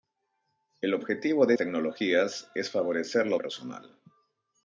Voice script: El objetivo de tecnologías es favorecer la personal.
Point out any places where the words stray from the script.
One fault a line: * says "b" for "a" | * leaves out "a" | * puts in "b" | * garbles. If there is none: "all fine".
all fine